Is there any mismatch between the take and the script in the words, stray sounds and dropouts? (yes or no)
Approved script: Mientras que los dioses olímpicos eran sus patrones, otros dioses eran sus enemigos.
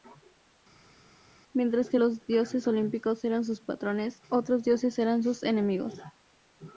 no